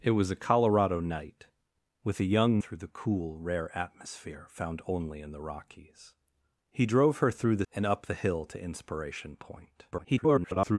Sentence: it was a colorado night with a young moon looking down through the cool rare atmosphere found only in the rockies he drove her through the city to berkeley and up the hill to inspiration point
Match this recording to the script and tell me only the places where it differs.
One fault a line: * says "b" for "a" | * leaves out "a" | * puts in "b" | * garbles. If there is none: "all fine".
* leaves out "moon looking down"
* leaves out "city to berkeley"
* garbles